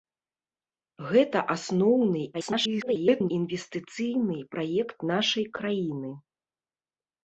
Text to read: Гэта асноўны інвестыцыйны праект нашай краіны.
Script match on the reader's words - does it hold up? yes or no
no